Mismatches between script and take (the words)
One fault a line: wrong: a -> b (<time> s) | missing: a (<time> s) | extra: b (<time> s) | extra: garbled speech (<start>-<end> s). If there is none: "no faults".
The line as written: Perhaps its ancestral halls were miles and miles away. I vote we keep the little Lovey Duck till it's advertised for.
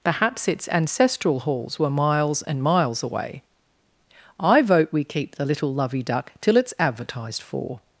no faults